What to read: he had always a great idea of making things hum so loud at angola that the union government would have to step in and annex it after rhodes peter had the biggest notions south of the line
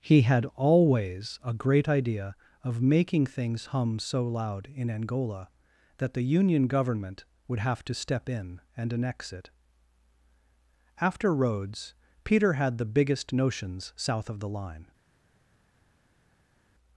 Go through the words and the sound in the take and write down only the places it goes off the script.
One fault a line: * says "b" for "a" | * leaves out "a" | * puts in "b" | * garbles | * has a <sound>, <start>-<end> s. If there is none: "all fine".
* says "in" for "at"